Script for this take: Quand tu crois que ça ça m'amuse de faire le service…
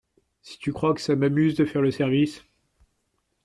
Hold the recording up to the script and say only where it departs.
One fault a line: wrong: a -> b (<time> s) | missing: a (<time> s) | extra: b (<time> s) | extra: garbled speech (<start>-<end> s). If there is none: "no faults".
wrong: Quand -> Si (0.4 s)
missing: ça (1.2 s)